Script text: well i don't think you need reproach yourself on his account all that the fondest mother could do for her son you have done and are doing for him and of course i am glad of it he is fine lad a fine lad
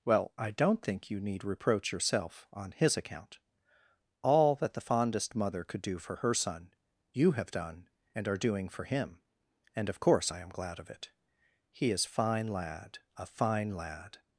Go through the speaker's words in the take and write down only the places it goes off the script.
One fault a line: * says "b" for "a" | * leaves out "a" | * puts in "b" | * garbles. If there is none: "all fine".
all fine